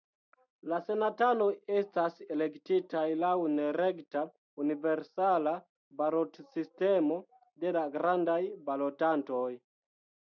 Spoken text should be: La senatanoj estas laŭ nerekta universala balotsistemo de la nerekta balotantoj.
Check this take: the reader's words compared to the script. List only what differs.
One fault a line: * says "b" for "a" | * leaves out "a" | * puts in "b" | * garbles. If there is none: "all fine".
* puts in "elektitaj"
* says "grandaj" for "nerekta"